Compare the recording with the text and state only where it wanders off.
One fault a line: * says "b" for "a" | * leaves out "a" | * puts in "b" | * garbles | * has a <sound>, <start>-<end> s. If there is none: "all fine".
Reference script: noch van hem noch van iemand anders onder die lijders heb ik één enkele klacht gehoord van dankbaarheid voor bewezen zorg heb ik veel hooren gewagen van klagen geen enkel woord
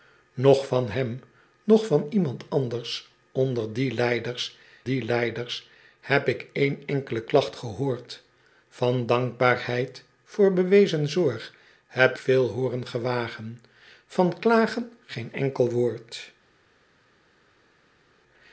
* puts in "die lijders"
* leaves out "ik"